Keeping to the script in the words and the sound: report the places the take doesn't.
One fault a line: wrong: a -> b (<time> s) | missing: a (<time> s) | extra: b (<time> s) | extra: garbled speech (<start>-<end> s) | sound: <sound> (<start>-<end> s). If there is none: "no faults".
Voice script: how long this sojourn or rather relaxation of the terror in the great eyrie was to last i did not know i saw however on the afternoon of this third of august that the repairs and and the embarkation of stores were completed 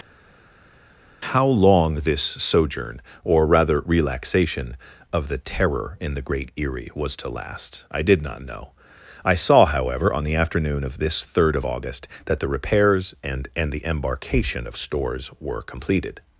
no faults